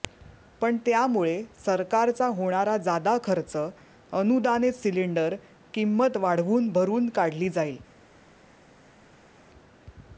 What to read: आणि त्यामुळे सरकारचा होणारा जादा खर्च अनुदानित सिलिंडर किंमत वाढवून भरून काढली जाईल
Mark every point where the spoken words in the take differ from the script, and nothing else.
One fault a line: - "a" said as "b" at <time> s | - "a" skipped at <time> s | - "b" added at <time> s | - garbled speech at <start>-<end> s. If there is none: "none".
- "आणि" said as "पण" at 0.6 s